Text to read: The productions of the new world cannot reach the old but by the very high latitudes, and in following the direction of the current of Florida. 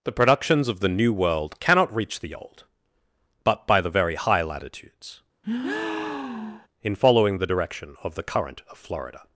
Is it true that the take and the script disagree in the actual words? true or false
true